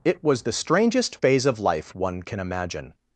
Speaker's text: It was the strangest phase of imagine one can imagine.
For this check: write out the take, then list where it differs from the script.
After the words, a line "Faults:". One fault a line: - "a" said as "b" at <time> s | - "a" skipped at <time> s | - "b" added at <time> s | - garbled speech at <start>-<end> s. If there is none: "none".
It was the strangest phase of life one can imagine.
Faults:
- "imagine" said as "life" at 1.6 s